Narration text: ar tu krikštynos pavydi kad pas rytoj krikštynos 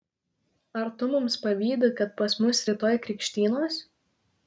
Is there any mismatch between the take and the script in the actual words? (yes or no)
yes